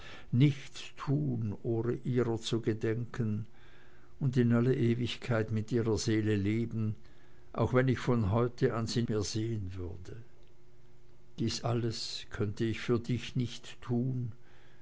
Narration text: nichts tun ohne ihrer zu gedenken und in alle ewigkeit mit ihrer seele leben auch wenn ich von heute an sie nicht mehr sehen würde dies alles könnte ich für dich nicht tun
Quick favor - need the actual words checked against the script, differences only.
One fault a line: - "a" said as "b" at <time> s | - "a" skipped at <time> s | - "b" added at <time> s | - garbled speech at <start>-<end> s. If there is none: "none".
- "nicht" skipped at 9.0 s